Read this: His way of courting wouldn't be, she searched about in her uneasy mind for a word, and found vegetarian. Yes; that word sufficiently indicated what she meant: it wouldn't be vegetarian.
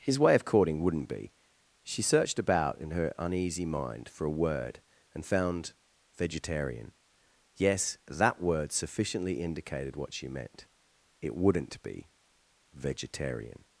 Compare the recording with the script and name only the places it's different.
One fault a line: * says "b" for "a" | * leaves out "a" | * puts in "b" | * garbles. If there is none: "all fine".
all fine